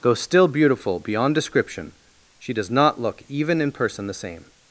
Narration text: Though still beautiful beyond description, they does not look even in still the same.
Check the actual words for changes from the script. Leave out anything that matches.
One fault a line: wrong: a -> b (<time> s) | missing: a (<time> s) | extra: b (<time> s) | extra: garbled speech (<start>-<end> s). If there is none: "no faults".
wrong: they -> she (2.4 s)
wrong: still -> person (3.7 s)